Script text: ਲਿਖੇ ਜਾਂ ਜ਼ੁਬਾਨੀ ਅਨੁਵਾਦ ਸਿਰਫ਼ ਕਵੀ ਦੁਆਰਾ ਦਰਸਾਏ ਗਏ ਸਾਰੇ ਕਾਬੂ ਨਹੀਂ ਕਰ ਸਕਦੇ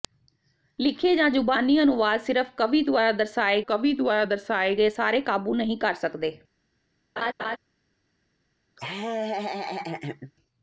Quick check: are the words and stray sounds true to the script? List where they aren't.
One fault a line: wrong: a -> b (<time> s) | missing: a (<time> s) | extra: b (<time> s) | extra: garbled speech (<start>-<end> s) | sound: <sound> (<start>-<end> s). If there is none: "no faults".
extra: ਕਵੀ ਦੁਆਰਾ ਦਰਸਾਏ (3.7 s)
sound: laugh (7.2-7.6 s)
sound: laugh (8.8-10.3 s)